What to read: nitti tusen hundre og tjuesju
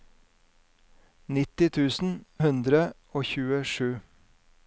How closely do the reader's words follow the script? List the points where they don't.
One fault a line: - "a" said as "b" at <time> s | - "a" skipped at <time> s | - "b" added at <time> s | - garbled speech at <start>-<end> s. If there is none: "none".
none